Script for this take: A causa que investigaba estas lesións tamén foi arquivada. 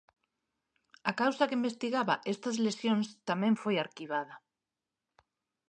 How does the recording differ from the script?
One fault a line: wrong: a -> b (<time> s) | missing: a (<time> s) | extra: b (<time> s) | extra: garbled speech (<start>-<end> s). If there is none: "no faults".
no faults